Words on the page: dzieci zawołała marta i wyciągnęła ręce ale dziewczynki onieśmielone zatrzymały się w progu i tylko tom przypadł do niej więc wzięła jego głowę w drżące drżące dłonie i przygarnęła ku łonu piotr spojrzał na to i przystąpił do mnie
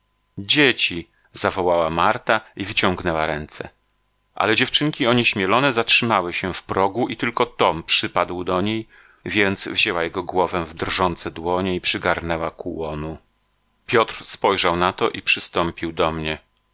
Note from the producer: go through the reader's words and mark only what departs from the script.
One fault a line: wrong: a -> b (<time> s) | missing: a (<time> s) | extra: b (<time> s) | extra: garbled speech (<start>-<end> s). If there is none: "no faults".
missing: drżące (11.3 s)